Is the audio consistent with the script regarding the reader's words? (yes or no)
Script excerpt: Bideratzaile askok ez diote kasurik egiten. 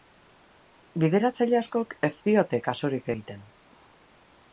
yes